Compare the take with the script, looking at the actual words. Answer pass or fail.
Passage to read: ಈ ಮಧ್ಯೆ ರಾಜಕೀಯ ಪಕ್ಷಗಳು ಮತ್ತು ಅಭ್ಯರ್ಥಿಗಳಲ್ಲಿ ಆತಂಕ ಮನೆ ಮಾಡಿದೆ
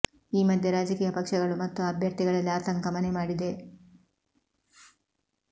pass